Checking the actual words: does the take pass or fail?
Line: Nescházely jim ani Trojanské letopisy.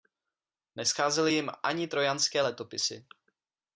pass